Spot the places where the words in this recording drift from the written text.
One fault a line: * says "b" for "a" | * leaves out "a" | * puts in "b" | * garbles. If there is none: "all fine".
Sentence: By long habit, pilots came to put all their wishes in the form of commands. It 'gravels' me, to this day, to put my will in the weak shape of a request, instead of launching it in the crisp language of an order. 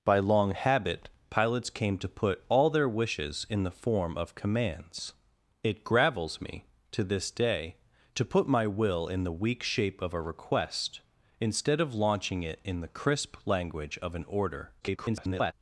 * garbles